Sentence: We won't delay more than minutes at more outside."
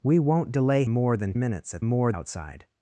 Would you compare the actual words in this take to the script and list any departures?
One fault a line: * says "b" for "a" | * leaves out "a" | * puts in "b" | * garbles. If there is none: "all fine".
all fine